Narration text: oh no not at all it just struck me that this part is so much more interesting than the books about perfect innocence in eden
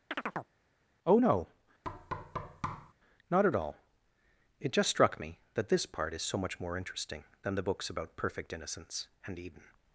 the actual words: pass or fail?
fail